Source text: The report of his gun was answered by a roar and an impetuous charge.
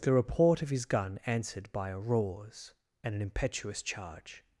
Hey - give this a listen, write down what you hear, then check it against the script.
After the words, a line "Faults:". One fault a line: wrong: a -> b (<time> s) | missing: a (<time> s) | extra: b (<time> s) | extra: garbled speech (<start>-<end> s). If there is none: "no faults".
The report of his gun answered by a roars and an impetuous charge.
Faults:
missing: was (1.2 s)
wrong: roar -> roars (2.0 s)